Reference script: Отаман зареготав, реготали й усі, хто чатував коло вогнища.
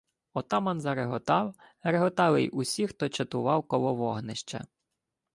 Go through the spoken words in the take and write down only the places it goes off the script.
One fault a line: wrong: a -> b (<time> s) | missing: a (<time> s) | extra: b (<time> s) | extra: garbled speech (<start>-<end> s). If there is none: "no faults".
no faults